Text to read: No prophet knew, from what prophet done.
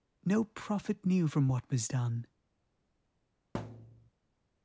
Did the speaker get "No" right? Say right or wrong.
right